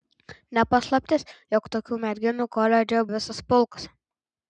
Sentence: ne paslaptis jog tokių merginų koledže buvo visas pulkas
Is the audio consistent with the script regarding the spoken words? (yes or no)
no